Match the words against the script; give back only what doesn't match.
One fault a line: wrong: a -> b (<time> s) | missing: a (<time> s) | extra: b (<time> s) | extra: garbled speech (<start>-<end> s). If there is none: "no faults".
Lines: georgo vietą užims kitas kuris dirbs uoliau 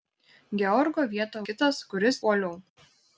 missing: užims (1.4 s)
missing: dirbs (2.2 s)